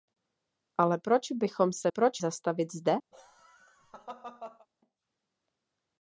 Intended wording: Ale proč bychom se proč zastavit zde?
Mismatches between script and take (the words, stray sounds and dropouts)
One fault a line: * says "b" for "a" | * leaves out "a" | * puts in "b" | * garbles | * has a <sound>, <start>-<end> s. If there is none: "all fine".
* has a laugh, 3.1-4.7 s